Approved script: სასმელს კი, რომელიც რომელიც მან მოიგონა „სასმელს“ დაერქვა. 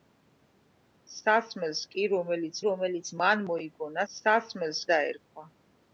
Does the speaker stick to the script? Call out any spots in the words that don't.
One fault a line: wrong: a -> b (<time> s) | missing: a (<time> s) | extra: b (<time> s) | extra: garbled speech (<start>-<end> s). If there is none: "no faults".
no faults